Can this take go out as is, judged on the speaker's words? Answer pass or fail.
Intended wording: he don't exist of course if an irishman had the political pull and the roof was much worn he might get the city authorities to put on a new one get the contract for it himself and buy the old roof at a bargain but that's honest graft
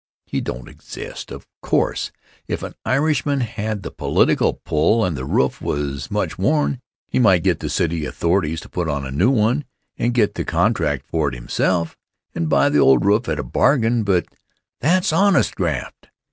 fail